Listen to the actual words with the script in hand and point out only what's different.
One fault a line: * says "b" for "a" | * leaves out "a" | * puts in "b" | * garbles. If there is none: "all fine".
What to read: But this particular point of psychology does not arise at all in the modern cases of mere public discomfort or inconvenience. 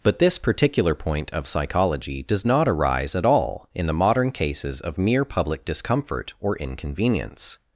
all fine